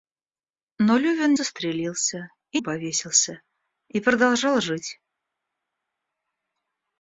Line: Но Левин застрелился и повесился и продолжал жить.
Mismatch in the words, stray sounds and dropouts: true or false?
false